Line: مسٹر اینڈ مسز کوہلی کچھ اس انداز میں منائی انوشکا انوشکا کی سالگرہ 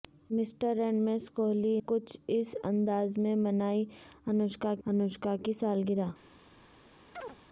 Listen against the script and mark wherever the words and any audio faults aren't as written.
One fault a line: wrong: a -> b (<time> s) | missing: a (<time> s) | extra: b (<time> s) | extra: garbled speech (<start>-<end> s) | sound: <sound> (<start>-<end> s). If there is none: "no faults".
sound: chirp (7.1-7.4 s)